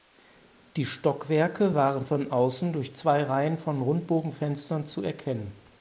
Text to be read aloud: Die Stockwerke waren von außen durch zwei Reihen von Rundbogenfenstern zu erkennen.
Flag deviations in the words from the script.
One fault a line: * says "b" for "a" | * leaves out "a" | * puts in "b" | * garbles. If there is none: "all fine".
all fine